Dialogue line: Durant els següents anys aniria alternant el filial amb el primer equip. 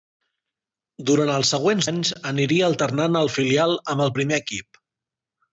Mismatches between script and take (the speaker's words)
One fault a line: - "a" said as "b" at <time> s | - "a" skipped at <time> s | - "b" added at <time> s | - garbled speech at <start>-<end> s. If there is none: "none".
none